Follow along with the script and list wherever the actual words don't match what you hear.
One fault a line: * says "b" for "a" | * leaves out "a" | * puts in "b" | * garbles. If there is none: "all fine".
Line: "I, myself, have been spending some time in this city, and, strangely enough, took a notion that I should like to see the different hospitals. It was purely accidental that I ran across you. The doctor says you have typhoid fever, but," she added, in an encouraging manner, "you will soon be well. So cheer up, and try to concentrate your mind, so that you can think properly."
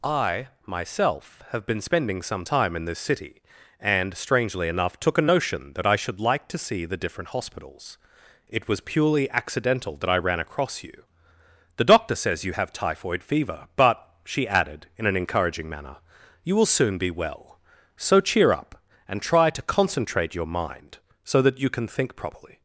all fine